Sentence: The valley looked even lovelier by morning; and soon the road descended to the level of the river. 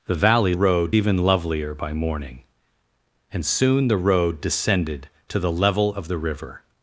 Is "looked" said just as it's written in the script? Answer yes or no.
no